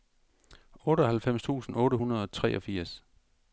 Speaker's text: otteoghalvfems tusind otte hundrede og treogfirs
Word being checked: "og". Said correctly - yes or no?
yes